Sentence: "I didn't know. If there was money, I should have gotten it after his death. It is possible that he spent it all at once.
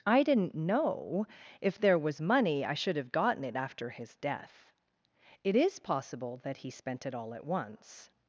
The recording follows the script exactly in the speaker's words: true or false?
true